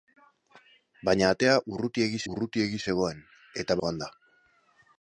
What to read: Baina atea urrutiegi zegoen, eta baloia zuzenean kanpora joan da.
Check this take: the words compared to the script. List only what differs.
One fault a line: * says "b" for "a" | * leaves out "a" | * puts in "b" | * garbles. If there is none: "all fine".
* puts in "urrutiegi"
* leaves out "baloia zuzenean kanpora"